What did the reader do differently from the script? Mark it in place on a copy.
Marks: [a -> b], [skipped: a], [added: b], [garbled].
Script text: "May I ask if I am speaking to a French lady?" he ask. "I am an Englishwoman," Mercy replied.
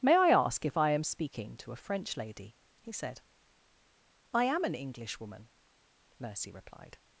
"May I ask if I am speaking to a French lady?" he [ask. -> said] "I am an Englishwoman," Mercy replied.